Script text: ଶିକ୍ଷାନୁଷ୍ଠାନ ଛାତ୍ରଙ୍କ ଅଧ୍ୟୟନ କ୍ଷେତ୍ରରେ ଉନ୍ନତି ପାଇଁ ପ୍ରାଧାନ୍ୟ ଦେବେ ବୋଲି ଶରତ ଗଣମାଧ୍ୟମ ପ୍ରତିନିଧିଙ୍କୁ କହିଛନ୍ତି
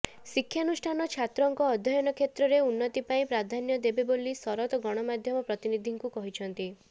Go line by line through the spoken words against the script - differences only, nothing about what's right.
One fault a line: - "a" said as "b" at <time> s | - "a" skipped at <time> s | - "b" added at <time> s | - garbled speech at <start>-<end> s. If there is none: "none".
none